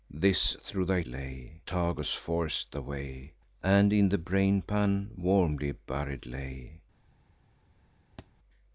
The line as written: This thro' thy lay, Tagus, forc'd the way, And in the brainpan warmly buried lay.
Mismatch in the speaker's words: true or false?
false